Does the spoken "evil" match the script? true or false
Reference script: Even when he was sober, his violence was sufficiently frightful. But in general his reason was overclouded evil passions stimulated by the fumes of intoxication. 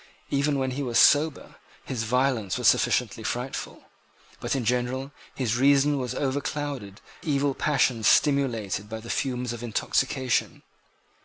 true